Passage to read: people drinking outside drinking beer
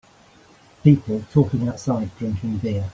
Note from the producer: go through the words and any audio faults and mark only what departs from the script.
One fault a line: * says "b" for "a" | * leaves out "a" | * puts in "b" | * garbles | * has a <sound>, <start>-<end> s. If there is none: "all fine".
* says "talking" for "drinking"